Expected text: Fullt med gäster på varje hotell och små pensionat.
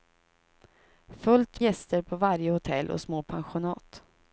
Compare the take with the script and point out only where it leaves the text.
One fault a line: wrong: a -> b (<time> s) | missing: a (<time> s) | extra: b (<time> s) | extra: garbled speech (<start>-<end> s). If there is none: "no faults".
missing: med (1.6 s)